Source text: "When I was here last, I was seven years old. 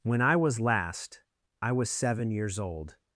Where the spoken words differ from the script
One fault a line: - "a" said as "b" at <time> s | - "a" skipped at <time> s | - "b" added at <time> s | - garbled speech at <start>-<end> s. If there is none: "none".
- "here" skipped at 0.6 s